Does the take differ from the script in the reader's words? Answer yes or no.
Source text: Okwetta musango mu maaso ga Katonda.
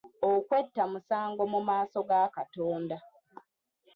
no